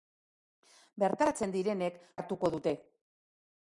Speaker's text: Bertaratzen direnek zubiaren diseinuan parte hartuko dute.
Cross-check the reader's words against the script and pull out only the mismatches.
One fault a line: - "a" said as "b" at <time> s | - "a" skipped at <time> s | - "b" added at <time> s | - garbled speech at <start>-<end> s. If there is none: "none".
- "zubiaren diseinuan parte" skipped at 2.0 s